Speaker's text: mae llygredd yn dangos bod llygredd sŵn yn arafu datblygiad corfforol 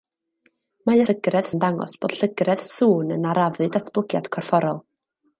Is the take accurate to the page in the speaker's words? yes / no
yes